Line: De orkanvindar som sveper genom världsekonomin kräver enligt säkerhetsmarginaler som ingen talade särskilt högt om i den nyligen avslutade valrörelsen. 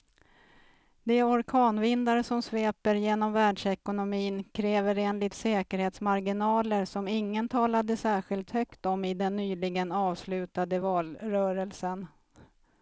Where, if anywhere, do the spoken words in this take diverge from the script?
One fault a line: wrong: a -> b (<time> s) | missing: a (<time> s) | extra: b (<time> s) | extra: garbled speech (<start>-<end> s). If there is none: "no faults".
no faults